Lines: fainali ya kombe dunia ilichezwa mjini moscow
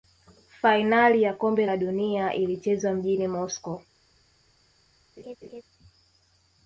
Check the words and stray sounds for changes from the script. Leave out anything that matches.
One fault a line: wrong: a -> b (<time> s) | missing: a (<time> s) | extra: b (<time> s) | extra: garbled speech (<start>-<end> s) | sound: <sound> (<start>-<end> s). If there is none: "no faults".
extra: la (1.6 s)
sound: laugh (5.2-5.6 s)